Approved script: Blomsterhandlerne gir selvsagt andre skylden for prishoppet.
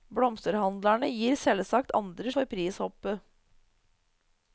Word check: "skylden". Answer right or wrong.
wrong